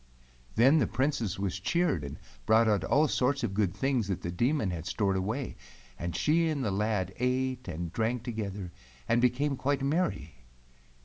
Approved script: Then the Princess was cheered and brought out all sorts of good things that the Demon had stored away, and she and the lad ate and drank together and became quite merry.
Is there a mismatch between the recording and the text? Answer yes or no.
no